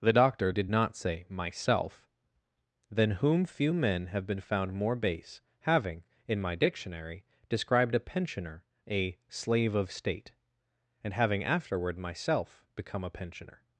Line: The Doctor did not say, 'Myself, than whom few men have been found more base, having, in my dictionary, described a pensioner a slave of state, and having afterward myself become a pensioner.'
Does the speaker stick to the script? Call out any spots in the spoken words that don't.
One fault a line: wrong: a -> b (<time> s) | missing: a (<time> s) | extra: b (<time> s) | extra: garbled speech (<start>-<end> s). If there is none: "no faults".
no faults